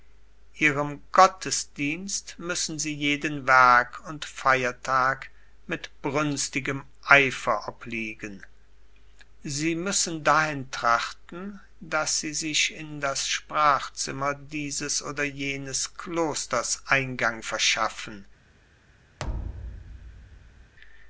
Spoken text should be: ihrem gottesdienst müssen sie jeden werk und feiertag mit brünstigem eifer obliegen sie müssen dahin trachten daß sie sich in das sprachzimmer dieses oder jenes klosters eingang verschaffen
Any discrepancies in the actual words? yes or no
no